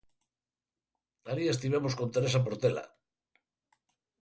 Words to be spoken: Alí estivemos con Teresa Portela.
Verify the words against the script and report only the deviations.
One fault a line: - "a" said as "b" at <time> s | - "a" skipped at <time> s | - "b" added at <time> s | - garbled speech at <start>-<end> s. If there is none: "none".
none